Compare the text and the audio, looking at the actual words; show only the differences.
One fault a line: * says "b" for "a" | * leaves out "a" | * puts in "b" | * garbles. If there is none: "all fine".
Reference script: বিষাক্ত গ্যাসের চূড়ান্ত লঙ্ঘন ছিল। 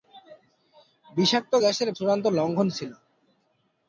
all fine